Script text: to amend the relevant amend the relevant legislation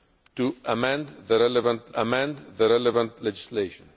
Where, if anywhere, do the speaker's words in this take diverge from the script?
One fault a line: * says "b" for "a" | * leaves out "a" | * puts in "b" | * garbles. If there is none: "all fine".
all fine